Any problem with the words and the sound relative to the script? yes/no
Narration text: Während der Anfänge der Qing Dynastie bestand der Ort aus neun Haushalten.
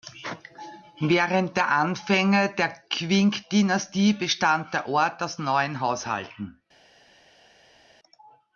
no